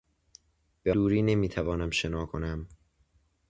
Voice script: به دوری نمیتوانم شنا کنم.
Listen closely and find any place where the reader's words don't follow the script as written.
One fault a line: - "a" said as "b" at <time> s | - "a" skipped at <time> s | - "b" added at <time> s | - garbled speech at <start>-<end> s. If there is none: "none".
none